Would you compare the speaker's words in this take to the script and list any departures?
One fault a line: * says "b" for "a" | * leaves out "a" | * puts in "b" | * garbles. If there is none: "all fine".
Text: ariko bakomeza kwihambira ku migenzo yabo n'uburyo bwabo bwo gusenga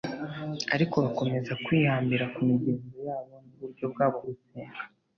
* leaves out "bwo"